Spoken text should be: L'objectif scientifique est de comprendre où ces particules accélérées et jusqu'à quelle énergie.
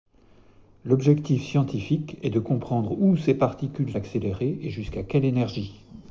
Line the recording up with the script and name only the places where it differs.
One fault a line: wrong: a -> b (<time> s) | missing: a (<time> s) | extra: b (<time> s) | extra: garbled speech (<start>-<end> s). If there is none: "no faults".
no faults